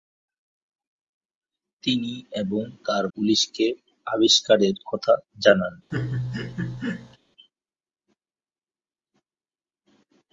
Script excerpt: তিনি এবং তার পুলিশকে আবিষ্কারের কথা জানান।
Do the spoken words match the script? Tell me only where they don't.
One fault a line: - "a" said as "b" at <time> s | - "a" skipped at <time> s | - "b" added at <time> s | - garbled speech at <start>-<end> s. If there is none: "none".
none